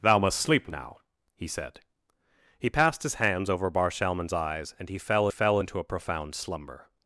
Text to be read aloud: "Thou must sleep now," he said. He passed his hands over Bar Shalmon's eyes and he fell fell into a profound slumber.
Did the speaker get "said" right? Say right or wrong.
right